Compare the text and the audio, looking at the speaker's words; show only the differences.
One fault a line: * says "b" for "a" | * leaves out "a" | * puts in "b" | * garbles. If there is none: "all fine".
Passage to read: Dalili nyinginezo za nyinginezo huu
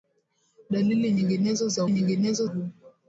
all fine